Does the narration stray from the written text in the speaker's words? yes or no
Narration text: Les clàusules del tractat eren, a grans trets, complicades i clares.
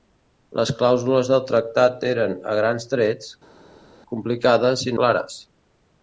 no